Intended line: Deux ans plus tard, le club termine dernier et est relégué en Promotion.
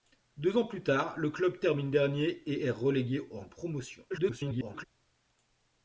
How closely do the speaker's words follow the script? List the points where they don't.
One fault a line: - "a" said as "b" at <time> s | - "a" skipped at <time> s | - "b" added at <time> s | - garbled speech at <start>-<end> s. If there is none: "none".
- garbled speech at 4.1-4.8 s